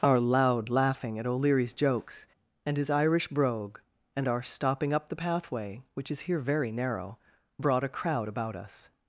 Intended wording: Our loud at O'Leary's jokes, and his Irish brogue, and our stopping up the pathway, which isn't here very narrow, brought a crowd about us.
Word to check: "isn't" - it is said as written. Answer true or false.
false